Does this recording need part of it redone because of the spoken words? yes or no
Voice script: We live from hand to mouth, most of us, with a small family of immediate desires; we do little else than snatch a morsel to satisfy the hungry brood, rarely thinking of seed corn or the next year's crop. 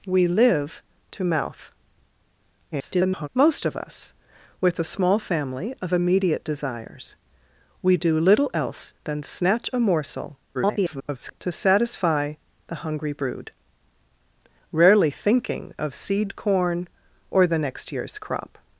yes